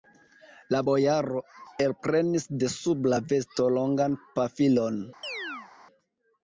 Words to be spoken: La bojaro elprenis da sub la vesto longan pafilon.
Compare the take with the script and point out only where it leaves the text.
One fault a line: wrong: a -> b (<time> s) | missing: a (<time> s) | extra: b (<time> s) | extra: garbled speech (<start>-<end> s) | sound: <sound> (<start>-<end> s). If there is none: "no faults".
wrong: da -> de (2.6 s)
sound: chirp (5.2-5.7 s)